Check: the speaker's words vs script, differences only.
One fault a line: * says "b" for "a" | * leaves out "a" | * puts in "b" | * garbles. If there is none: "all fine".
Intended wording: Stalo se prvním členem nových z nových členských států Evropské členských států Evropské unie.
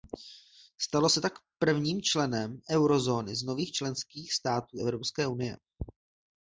* puts in "tak"
* says "eurozóny" for "nových"
* leaves out "členských států Evropské"